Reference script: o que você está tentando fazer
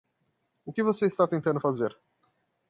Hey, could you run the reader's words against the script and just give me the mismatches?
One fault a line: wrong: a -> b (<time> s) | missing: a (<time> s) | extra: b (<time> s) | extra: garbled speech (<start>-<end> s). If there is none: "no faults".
no faults